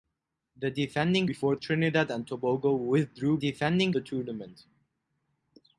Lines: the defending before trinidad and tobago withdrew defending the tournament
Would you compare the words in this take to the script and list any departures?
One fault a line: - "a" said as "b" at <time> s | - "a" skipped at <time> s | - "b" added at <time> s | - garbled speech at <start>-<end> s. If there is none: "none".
none